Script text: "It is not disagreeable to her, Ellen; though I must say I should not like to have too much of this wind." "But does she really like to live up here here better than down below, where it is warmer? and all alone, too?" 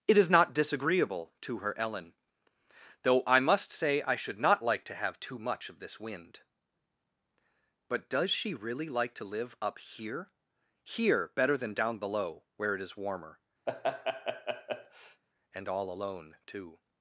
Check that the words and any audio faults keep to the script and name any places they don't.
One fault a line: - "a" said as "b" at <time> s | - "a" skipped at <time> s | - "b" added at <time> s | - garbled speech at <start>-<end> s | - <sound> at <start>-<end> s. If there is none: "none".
- laugh at 13.7-15.2 s